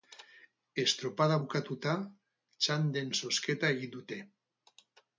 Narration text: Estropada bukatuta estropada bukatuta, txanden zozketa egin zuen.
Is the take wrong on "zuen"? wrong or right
wrong